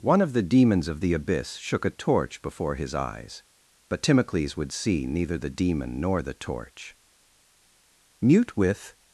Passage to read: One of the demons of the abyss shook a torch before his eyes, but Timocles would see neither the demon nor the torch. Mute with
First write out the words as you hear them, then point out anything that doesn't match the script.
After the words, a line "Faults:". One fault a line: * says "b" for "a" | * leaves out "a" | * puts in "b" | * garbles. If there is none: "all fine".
One of the demons of the abyss shook a torch before his eyes, but Timocles would see neither the demon nor the torch. Mute with
Faults:
all fine